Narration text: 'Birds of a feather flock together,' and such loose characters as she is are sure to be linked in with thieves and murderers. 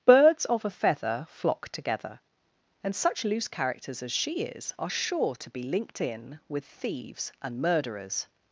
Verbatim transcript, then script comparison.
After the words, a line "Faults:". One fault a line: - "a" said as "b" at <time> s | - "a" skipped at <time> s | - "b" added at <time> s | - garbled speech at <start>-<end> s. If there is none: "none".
'Birds of a feather flock together,' and such loose characters as she is are sure to be linked in with thieves and murderers.
Faults:
none